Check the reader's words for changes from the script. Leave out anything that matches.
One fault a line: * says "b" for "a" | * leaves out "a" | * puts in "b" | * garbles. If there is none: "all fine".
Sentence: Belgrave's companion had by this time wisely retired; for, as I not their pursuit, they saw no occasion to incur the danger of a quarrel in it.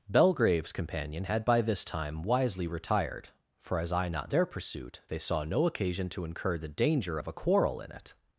all fine